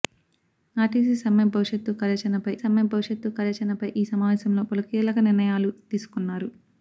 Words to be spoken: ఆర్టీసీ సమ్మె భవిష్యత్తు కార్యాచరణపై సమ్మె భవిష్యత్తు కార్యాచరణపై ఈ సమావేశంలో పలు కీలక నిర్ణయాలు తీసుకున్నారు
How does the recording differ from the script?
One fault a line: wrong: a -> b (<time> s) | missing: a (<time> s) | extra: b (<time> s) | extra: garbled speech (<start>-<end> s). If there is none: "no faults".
no faults